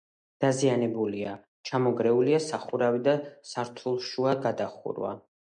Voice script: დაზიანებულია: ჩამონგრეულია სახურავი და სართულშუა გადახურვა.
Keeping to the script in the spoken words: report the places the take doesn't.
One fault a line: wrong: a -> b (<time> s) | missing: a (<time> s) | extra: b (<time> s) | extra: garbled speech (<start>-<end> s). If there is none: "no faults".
no faults